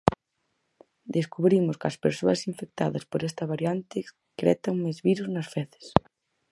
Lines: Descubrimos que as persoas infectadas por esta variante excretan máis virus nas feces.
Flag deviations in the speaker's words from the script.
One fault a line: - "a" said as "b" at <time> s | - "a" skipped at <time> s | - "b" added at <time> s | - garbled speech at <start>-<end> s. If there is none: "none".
none